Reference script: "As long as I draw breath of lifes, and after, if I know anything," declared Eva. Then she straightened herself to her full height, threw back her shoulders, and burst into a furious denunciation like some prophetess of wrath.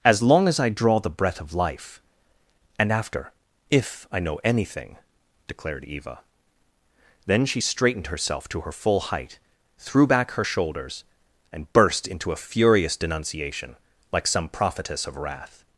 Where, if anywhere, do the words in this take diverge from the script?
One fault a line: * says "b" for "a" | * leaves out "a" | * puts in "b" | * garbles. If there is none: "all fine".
* puts in "the"
* says "life" for "lifes"